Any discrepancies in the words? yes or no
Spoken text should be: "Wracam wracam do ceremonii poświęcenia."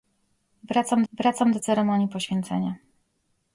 no